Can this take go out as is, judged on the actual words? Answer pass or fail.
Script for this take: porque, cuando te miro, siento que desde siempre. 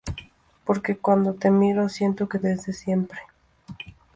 pass